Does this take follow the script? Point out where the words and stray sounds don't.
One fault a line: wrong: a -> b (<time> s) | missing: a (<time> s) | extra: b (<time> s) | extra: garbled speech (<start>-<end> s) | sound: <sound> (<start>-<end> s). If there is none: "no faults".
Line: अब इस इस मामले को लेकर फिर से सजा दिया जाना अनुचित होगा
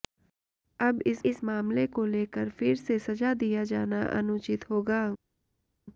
no faults